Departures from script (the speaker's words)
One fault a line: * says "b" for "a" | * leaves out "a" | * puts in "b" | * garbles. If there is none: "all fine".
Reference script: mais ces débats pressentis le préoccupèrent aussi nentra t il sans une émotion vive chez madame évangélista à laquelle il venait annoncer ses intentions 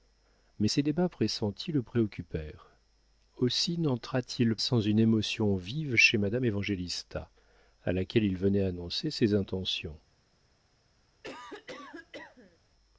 all fine